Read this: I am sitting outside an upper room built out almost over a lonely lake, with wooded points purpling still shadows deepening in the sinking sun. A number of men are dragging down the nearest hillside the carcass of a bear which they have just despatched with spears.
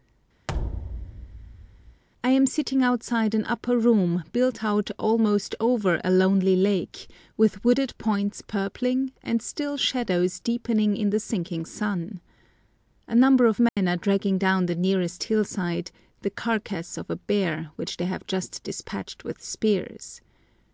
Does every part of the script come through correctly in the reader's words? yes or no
no